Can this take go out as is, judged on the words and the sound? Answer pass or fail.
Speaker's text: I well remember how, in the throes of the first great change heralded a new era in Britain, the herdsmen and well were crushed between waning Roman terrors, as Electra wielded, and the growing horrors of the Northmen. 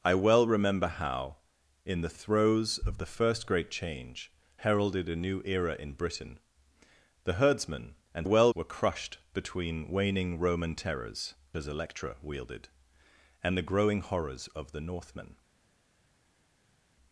pass